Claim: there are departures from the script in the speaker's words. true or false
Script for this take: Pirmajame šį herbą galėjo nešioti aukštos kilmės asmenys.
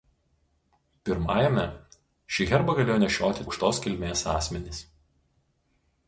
false